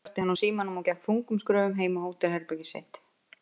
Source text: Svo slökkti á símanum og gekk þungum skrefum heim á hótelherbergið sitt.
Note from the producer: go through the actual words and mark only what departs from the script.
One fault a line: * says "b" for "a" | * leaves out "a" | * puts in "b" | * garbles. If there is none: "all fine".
* puts in "hann"